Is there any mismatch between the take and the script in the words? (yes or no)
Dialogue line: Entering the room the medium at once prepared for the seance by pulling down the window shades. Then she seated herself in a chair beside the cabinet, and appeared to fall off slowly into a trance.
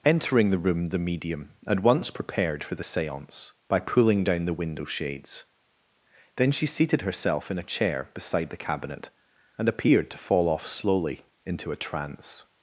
no